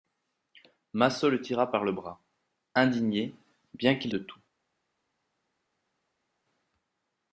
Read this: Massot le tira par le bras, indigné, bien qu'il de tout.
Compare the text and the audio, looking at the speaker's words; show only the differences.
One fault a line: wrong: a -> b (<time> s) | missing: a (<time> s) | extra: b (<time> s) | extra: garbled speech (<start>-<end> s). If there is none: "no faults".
no faults